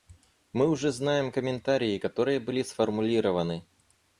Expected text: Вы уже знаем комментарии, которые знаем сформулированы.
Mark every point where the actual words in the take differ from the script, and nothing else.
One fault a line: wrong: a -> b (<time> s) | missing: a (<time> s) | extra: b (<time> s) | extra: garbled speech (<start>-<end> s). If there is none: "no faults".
wrong: Вы -> Мы (0.5 s)
wrong: знаем -> были (2.4 s)